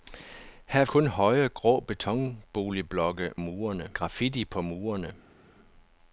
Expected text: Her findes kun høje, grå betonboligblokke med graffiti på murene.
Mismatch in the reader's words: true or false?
true